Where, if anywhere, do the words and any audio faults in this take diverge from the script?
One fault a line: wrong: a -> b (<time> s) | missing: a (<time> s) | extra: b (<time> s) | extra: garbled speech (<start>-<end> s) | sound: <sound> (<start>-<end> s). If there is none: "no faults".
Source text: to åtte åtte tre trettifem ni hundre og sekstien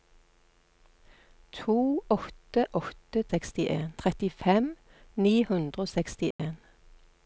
wrong: tre -> sekstien (3.3 s)
sound: dropout (6.3-6.4 s)